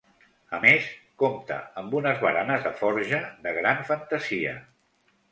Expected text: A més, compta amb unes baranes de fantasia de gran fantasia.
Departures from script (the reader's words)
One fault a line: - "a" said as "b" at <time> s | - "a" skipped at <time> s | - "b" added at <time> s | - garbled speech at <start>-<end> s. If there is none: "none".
- "fantasia" said as "forja" at 2.8 s